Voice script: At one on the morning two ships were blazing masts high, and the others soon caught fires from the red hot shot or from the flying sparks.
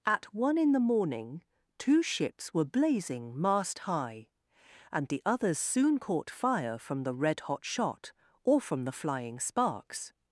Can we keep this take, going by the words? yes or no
no